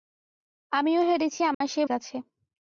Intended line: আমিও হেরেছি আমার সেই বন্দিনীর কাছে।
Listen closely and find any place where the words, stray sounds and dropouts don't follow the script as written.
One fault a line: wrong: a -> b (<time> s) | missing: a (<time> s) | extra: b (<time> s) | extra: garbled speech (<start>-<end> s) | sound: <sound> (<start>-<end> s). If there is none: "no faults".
sound: dropout (1.5-1.6 s)
missing: বন্দিনীর (1.9 s)